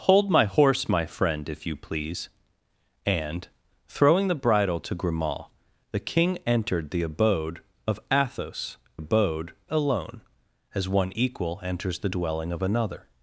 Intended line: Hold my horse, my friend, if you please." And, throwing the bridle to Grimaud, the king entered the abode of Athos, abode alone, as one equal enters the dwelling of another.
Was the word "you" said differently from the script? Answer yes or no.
no